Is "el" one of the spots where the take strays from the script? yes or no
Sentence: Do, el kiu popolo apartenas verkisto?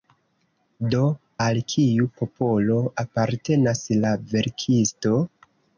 yes